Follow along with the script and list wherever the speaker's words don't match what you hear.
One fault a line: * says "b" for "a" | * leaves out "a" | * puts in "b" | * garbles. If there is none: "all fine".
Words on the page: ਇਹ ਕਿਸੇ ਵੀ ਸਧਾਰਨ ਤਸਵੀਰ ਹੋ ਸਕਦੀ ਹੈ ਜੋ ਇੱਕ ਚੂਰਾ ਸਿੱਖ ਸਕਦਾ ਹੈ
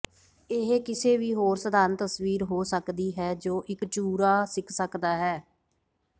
* puts in "ਹੋਰ"